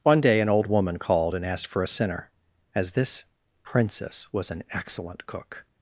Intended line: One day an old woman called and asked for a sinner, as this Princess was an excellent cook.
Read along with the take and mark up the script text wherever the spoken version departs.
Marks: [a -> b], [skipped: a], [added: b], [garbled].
One day an old woman called and asked for a sinner, as this Princess was an excellent cook.